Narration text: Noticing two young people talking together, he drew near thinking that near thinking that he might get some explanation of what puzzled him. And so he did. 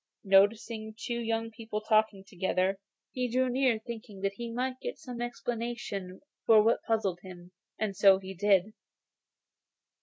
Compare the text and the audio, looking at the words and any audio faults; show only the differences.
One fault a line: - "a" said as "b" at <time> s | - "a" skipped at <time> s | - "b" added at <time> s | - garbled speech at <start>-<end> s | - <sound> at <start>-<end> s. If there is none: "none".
- "near thinking that" skipped at 4.3 s